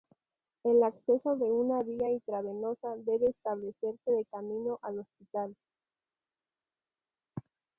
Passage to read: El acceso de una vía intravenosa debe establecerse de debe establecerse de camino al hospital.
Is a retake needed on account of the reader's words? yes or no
yes